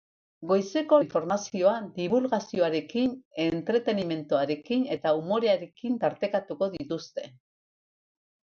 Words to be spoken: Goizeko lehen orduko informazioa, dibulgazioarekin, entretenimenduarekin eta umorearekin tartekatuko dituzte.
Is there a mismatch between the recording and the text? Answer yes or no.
yes